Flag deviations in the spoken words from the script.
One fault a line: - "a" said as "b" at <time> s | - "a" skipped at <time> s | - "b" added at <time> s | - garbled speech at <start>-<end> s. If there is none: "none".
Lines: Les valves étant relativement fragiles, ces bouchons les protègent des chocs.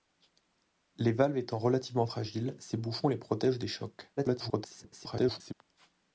- garbled speech at 4.2-5.5 s